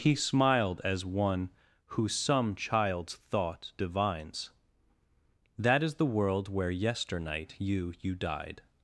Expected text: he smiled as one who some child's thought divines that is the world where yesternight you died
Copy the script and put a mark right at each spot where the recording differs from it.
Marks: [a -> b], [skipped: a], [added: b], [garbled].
he smiled as one who some child's thought divines that is the world where yesternight you [added: you] died